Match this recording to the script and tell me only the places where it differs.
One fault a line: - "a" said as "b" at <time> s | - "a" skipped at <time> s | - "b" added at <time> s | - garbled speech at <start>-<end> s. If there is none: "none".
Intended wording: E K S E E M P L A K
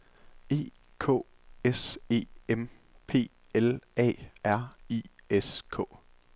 - "E" skipped at 2.2 s
- "R I S" added at 4.4 s